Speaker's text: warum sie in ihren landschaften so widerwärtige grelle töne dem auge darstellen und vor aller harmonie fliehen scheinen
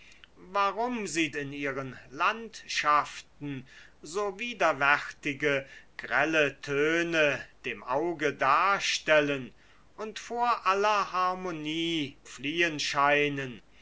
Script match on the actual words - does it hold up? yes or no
yes